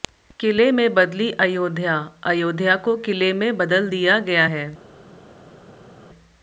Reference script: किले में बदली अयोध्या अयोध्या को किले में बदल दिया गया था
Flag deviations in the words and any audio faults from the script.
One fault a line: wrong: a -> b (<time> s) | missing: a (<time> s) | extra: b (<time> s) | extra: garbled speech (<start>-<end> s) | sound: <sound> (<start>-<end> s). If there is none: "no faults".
wrong: था -> है (4.4 s)